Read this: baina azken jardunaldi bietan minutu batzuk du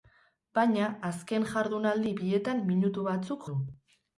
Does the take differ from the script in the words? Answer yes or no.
no